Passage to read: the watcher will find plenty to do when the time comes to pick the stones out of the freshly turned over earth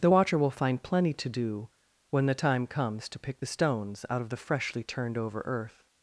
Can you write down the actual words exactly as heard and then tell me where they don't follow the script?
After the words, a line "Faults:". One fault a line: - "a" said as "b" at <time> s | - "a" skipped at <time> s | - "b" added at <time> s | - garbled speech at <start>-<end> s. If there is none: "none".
the watcher will find plenty to do when the time comes to pick the stones out of the freshly turned over earth
Faults:
none